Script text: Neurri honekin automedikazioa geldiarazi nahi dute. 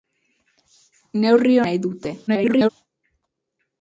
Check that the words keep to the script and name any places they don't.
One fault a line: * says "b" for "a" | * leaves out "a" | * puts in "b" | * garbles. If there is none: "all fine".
* leaves out "honekin automedikazioa geldiarazi"
* garbles